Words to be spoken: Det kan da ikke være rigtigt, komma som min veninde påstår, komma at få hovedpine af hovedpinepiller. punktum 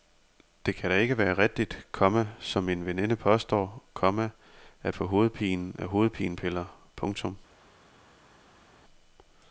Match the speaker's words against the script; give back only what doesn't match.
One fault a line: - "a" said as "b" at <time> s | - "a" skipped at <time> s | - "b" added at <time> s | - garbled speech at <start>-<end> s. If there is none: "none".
none